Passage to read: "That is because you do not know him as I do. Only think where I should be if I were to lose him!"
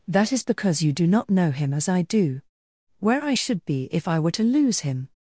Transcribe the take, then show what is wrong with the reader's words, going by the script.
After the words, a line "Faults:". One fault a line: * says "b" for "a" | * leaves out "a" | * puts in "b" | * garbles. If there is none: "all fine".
"That is because you do not know him as I do. where I should be if I were to lose him!"
Faults:
* leaves out "Only think"